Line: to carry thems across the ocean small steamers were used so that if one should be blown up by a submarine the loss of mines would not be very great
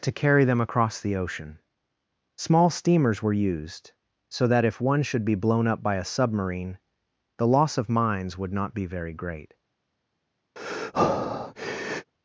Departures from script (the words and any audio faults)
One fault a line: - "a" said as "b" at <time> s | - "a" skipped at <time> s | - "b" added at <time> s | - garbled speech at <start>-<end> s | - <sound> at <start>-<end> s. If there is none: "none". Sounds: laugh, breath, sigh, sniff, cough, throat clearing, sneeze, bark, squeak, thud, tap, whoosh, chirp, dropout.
- "thems" said as "them" at 0.5 s
- breath at 10.6-12.1 s